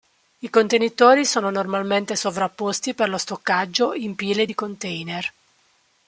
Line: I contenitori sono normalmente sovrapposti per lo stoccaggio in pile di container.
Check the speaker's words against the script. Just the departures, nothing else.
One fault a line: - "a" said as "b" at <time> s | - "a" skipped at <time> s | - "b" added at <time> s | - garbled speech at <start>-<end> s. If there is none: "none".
none